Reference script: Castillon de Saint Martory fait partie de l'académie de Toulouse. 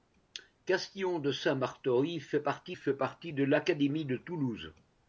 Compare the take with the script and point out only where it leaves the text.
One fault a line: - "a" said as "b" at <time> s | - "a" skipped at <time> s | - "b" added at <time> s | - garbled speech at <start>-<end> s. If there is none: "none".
- "fait partie" added at 2.7 s